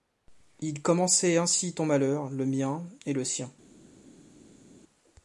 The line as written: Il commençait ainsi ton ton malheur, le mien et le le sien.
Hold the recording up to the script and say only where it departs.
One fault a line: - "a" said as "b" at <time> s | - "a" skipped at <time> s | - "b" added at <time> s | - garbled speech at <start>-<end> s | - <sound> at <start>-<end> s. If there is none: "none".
- "ton" skipped at 1.9 s
- "le" skipped at 3.2 s